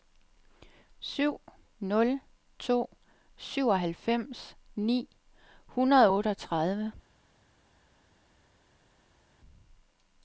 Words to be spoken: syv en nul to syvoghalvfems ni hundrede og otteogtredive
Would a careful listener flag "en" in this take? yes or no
yes